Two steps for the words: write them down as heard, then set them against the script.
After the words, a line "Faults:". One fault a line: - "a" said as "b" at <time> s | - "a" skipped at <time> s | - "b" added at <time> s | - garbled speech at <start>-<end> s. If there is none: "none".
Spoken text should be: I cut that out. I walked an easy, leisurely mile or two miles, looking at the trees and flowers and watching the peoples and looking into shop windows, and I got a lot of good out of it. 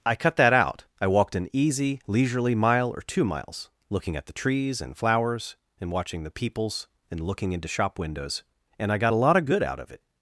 I cut that out. I walked an easy, leisurely mile or two miles, looking at the trees and flowers and watching the peoples and looking into shop windows, and I got a lot of good out of it.
Faults:
none